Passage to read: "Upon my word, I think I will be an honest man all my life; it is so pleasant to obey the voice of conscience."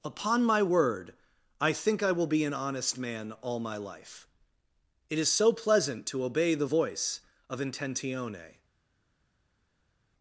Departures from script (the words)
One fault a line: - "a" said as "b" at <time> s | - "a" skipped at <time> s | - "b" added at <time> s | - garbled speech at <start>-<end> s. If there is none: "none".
- "conscience" said as "intentione" at 7.6 s